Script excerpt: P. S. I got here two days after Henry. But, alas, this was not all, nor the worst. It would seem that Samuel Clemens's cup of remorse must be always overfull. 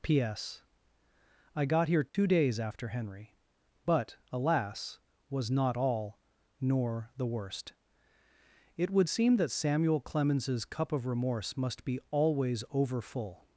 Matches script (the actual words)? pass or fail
fail